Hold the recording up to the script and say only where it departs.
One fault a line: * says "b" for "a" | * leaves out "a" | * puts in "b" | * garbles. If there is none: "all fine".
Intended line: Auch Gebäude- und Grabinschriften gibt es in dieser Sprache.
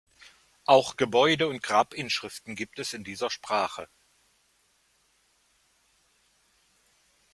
all fine